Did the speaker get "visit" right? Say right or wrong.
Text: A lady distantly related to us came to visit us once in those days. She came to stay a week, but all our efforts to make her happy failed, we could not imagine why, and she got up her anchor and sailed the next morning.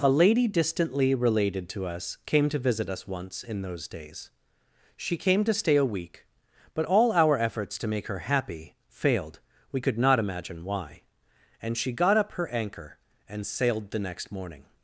right